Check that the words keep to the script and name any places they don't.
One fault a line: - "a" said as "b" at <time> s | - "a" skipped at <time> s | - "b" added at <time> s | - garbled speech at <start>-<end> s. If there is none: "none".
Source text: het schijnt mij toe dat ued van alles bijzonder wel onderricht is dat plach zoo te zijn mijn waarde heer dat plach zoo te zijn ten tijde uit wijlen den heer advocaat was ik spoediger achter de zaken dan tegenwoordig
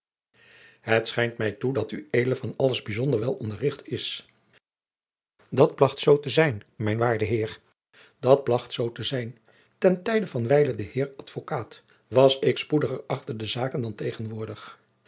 - "uit" said as "van" at 10.3 s